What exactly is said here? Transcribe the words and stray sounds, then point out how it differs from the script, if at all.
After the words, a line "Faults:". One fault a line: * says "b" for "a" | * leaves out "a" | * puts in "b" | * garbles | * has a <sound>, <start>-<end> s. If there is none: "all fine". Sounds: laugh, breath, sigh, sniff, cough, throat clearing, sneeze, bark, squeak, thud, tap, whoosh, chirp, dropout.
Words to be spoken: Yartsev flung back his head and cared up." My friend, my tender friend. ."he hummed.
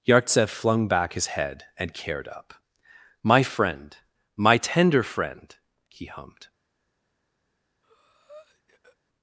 Yartsev flung back his head and cared up." My friend, my tender friend. ."he hummed.
Faults:
* has a breath, 7.8-9.0 s